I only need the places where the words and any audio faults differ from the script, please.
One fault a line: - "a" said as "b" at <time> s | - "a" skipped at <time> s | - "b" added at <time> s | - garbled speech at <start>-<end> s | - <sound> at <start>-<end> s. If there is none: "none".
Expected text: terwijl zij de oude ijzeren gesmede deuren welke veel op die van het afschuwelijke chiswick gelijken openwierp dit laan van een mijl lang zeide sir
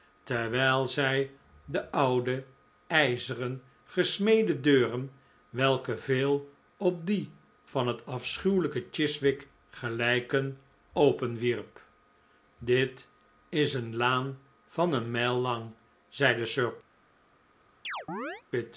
- "is een" added at 13.5 s
- chirp at 17.8-18.4 s